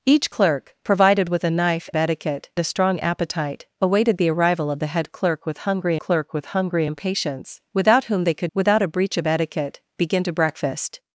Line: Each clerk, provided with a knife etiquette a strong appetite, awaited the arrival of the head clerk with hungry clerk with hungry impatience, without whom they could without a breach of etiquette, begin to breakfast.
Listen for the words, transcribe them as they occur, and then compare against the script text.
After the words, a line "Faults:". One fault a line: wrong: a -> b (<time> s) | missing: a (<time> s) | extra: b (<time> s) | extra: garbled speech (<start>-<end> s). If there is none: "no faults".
Each clerk, provided with a knife etiquette a strong appetite, awaited the arrival of the head clerk with hungry clerk with hungry impatience, without whom they could without a breach of etiquette, begin to breakfast.
Faults:
no faults